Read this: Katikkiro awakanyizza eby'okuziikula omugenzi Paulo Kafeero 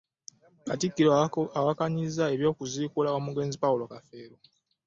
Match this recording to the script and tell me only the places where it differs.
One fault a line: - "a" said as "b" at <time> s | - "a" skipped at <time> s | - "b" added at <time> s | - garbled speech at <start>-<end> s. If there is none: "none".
none